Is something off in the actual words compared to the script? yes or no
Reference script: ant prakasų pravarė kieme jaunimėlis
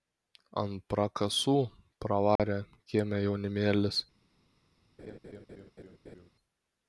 no